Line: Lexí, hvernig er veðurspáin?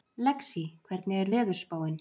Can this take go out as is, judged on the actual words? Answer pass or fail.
pass